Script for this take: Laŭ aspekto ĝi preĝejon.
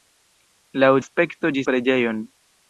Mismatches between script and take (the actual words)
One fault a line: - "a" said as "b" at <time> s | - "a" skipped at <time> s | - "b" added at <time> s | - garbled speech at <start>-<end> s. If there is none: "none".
none